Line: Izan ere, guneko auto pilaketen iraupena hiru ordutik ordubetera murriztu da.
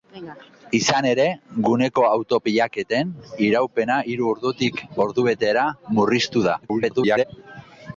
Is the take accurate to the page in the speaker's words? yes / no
no